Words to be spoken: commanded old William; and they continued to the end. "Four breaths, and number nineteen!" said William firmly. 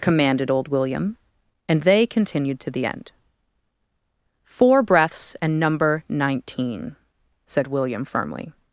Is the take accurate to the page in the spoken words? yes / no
yes